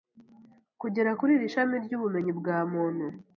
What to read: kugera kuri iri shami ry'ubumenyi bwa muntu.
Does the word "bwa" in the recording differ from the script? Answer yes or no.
no